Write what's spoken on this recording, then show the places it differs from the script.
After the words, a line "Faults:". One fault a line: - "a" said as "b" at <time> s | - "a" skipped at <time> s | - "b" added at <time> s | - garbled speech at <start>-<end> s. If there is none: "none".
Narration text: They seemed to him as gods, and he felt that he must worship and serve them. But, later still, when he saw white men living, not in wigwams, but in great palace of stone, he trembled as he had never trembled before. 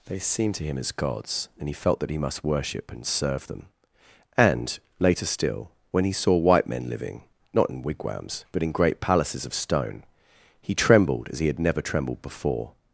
They seemed to him as gods, and he felt that he must worship and serve them. And, later still, when he saw white men living, not in wigwams, but in great palaces of stone, he trembled as he had never trembled before.
Faults:
- "But" said as "And" at 4.4 s
- "palace" said as "palaces" at 9.0 s